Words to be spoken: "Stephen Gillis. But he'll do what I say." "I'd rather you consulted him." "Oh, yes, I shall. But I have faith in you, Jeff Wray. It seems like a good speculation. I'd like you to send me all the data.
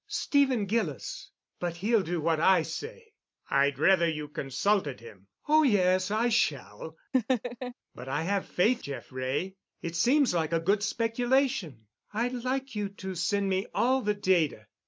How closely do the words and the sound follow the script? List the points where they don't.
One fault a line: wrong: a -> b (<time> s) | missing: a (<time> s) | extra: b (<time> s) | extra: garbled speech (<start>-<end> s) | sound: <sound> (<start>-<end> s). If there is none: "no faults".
sound: laugh (7.1-7.7 s)
missing: in you (8.8 s)